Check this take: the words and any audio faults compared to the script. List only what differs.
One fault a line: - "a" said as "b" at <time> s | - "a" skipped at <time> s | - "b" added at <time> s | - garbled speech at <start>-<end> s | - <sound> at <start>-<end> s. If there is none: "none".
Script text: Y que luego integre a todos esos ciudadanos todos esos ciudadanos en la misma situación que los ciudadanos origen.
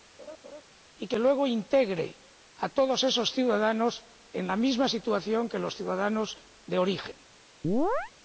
- laugh at 0.2-0.6 s
- "todos esos ciudadanos" skipped at 4.0 s
- "de" added at 6.7 s
- chirp at 7.6-8.1 s